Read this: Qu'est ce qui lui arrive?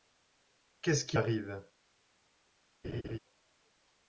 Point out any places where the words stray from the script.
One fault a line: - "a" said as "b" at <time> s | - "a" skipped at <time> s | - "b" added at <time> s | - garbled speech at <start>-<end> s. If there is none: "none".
- "lui" skipped at 1.2 s